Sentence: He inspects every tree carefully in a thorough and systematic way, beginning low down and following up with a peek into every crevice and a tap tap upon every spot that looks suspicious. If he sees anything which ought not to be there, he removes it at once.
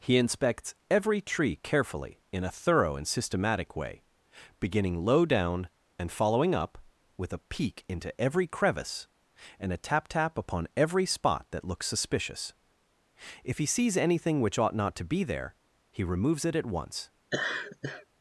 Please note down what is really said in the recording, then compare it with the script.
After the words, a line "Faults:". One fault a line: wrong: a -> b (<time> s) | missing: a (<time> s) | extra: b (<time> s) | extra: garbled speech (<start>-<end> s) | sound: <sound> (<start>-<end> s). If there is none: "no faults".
He inspects every tree carefully in a thorough and systematic way, beginning low down and following up with a peek into every crevice and a tap tap upon every spot that looks suspicious. If he sees anything which ought not to be there, he removes it at once.
Faults:
sound: laugh (17.3-18.1 s)